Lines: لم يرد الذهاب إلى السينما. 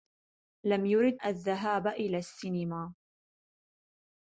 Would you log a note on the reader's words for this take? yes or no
no